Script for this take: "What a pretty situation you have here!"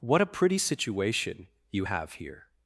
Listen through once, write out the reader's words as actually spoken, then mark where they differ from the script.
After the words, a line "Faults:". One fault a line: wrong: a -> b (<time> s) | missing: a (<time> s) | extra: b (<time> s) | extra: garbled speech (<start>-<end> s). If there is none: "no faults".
"What a pretty situation you have here!"
Faults:
no faults